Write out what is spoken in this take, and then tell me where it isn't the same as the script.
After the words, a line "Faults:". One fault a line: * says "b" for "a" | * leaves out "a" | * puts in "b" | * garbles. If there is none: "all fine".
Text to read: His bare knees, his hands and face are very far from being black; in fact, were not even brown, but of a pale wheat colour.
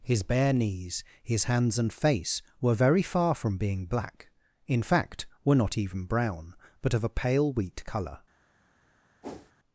His bare knees, his hands and face were very far from being black; in fact, were not even brown, but of a pale wheat colour.
Faults:
* says "were" for "are"